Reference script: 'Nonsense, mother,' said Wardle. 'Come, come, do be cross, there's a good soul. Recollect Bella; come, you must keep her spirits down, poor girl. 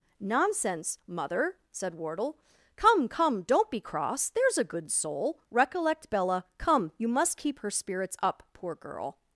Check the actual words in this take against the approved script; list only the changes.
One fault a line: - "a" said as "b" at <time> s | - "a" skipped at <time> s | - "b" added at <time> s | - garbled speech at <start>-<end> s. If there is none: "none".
- "do" said as "don't" at 3.4 s
- "down" said as "up" at 8.2 s